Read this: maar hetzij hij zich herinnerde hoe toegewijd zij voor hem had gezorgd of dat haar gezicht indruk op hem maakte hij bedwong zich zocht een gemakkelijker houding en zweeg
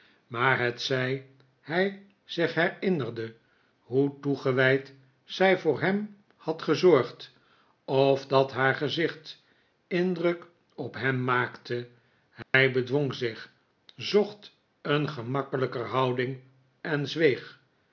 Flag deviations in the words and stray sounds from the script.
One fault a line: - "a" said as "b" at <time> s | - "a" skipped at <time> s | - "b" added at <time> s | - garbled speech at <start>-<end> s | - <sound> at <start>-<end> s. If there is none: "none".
- dropout at 12.4-12.5 s